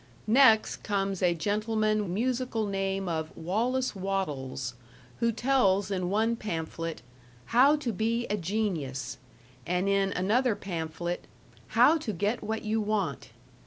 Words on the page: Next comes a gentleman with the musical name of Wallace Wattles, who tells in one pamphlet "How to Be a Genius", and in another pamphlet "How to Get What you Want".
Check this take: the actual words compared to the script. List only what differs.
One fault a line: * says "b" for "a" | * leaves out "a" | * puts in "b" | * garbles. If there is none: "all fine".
* leaves out "with the"